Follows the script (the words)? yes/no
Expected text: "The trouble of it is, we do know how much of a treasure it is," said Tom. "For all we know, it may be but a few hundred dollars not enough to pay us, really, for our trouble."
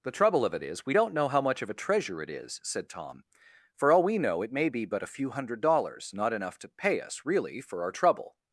no